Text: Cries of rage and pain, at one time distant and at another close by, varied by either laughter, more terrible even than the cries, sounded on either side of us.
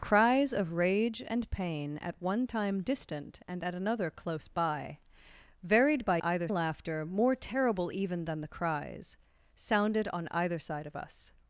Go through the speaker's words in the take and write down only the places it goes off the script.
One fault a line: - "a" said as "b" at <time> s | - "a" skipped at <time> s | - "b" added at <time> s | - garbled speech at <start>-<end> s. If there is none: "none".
none